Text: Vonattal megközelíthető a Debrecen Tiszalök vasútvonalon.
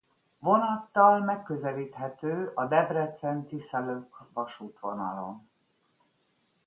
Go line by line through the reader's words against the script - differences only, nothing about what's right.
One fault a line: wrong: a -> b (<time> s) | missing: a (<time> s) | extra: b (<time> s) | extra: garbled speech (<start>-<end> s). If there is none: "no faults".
no faults